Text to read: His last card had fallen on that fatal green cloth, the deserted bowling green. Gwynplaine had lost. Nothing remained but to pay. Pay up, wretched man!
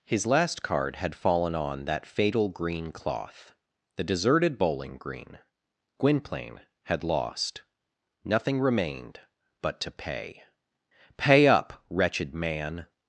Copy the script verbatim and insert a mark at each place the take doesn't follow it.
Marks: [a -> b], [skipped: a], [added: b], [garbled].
His last card had fallen on that fatal green cloth, the deserted bowling green. Gwynplaine had lost. Nothing remained but to pay. Pay up, wretched man!